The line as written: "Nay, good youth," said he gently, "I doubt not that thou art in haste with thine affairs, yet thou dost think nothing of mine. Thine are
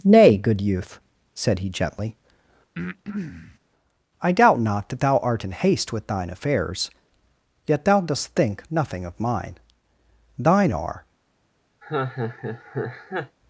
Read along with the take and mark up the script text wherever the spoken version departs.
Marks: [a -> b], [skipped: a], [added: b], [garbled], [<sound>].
"Nay, good youth," said he gently, [breath] "I doubt not that thou art in haste with thine affairs, yet thou dost think nothing of mine. Thine are [laugh]